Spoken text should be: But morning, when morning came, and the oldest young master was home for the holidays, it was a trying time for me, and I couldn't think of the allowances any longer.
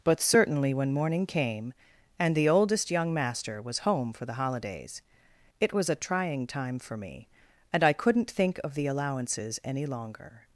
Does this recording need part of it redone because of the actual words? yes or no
yes